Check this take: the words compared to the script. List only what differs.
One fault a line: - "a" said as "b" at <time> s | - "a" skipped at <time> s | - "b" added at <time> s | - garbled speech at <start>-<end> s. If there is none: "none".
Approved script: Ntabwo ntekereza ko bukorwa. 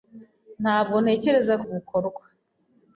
none